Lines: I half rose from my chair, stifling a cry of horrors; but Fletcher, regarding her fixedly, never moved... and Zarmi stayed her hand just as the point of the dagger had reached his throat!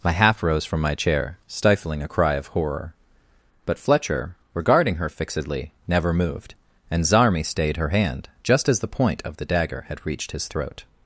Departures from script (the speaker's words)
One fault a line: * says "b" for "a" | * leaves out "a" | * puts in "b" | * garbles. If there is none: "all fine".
* says "horror" for "horrors"